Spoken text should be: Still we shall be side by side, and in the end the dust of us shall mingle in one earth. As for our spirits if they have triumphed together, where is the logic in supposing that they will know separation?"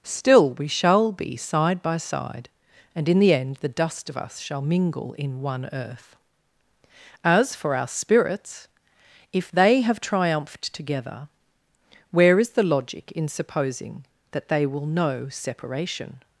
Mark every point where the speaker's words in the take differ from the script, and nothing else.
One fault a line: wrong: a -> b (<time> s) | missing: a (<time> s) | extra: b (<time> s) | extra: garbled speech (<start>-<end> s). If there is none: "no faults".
no faults